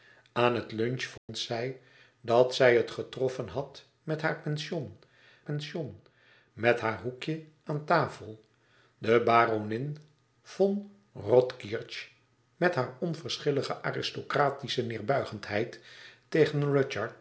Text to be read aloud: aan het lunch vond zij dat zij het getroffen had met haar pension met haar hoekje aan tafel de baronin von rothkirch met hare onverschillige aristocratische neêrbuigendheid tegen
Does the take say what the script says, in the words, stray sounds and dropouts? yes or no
no